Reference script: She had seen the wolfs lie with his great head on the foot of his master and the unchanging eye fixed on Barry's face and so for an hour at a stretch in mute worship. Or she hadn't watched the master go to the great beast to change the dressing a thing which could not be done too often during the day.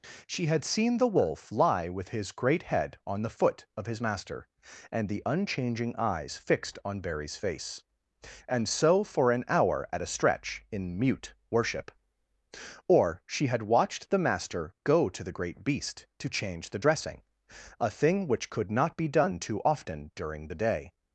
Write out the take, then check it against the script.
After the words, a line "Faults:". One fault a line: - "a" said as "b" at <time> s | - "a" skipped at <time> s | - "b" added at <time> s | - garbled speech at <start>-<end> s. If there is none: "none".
She had seen the wolf lie with his great head on the foot of his master and the unchanging eyes fixed on Barry's face and so for an hour at a stretch in mute worship. Or she had watched the master go to the great beast to change the dressing a thing which could not be done too often during the day.
Faults:
- "wolfs" said as "wolf" at 1.1 s
- "eye" said as "eyes" at 6.0 s
- "hadn't" said as "had" at 13.5 s